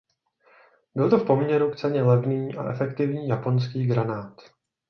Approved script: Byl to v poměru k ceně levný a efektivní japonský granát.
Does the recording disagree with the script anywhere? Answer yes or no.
no